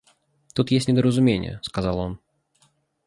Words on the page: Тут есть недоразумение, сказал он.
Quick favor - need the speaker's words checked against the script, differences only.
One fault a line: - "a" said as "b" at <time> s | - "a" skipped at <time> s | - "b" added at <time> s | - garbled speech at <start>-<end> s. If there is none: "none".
none